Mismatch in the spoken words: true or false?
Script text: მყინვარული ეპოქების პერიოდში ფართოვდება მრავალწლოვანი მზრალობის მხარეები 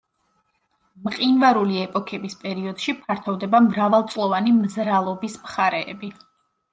false